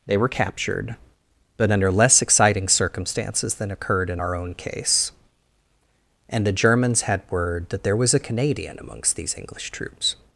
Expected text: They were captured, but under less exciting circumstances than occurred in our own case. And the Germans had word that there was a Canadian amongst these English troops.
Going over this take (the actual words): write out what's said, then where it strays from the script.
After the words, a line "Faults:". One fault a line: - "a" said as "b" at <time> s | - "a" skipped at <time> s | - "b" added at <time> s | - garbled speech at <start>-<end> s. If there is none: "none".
They were captured, but under less exciting circumstances than occurred in our own case. And the Germans had word that there was a Canadian amongst these English troops.
Faults:
none